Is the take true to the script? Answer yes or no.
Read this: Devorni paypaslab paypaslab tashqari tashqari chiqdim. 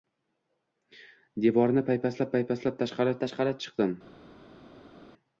yes